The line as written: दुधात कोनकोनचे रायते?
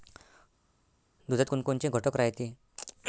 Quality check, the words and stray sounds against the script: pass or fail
fail